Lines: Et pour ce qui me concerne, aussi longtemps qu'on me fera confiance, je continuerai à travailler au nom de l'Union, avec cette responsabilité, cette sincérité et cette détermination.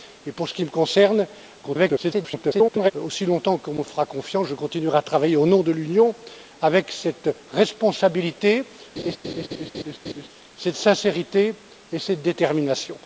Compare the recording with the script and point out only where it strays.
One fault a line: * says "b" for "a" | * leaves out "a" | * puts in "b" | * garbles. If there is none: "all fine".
* garbles